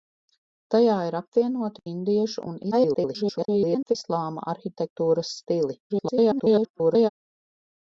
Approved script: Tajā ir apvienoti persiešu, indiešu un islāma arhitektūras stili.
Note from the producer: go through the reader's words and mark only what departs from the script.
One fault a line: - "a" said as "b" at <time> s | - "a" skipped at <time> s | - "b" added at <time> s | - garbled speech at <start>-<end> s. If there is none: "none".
- "persiešu" skipped at 1.8 s
- garbled speech at 2.7-4.0 s
- garbled speech at 5.9-7.1 s